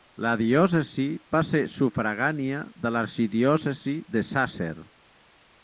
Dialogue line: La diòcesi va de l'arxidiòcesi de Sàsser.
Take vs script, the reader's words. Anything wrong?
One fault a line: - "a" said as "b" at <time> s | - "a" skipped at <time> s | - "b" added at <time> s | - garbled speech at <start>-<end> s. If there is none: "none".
- "ser sufragània" added at 1.5 s